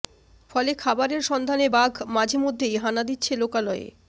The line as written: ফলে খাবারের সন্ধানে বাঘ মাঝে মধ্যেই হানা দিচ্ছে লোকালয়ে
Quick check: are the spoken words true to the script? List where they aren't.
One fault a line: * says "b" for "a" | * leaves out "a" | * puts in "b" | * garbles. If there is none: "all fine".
all fine